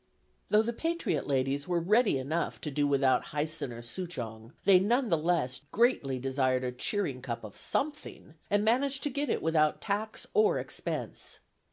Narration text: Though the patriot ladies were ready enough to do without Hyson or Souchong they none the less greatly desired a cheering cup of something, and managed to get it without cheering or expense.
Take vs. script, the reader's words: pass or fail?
fail